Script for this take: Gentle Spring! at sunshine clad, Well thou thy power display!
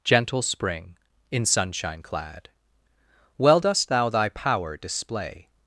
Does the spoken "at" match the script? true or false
false